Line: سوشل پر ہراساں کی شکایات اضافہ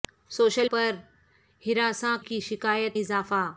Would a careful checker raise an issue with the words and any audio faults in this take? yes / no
no